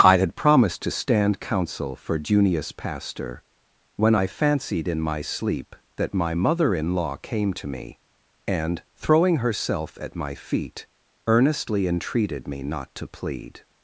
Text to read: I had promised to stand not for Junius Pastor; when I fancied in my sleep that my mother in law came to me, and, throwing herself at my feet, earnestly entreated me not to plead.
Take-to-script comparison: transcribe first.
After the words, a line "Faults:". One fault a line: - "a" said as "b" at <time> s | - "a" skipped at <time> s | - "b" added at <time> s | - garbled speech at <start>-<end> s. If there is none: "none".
I had promised to stand counsel for Junius Pastor; when I fancied in my sleep that my mother in law came to me, and, throwing herself at my feet, earnestly entreated me not to plead.
Faults:
- "not" said as "counsel" at 1.4 s